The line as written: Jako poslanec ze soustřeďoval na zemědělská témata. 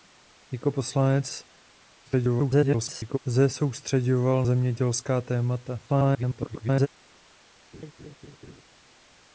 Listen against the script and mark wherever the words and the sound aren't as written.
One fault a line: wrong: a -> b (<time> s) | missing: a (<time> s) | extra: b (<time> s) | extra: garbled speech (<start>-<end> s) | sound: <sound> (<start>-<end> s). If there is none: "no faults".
extra: garbled speech (2.0-3.2 s)
missing: na (4.4 s)
extra: garbled speech (5.9-6.9 s)
sound: laugh (7.7-8.6 s)